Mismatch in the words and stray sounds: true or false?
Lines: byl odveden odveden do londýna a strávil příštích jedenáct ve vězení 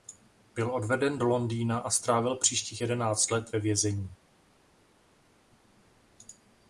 true